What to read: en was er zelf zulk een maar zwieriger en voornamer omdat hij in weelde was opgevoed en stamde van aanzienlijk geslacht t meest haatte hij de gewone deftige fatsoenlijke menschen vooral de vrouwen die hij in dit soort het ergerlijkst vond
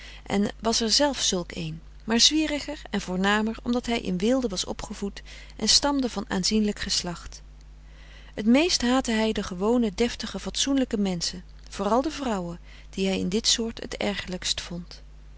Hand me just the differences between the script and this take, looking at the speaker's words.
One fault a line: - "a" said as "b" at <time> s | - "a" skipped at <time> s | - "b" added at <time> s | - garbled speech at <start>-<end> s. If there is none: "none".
none